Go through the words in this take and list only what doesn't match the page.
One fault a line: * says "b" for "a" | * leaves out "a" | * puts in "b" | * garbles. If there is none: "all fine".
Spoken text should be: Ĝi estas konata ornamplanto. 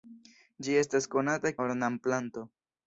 all fine